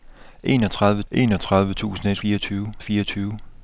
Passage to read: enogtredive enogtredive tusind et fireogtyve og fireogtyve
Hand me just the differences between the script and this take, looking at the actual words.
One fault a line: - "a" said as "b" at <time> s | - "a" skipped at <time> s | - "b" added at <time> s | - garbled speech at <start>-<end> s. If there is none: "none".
none